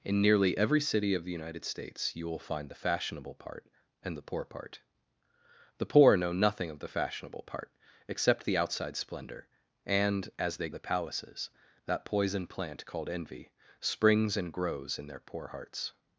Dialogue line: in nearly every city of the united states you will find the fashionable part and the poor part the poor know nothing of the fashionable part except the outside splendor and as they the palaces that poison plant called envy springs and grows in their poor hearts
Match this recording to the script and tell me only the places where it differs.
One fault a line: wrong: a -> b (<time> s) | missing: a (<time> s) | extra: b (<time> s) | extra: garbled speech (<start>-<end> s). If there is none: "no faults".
no faults